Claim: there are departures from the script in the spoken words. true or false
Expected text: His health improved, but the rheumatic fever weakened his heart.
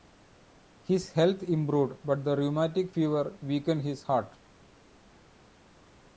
false